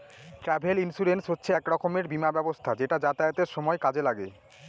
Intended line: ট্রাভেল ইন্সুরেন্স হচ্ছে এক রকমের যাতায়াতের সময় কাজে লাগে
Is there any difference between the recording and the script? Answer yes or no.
yes